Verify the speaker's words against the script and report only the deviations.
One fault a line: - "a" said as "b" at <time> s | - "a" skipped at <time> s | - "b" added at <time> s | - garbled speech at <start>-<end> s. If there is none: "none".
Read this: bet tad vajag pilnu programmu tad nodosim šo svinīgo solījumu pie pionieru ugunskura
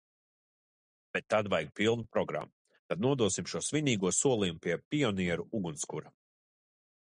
none